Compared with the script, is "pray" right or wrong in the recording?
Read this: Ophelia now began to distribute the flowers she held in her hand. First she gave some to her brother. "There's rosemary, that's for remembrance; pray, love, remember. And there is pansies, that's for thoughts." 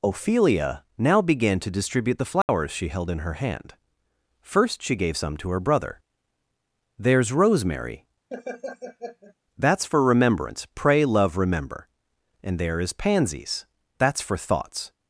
right